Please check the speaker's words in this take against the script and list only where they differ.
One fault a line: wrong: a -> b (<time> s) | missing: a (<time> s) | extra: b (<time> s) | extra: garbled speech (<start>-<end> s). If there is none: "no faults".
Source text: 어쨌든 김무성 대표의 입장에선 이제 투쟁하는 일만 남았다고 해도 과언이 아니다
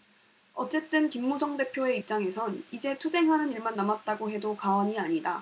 no faults